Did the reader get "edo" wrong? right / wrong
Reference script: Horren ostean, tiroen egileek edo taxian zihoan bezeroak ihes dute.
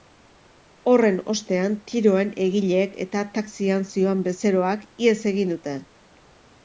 wrong